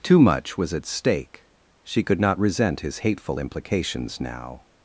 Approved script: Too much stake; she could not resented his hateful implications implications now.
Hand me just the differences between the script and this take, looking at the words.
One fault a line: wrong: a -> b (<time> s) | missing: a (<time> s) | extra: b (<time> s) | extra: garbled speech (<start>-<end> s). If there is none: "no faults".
extra: was at (0.6 s)
wrong: resented -> resent (2.4 s)
missing: implications (4.2 s)